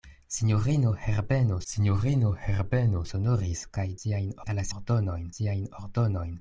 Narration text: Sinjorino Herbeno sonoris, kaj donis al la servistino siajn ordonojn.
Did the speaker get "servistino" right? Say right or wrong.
wrong